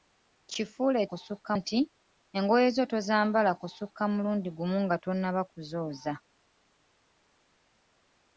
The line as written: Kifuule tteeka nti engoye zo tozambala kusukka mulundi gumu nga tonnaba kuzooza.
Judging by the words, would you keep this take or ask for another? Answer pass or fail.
fail